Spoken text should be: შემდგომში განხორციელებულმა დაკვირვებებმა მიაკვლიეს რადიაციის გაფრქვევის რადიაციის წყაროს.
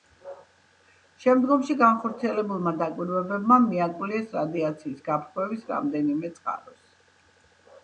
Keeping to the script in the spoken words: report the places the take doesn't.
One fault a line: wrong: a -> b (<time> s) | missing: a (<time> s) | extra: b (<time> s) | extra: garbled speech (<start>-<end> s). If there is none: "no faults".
wrong: რადიაციის -> რამდენიმე (5.8 s)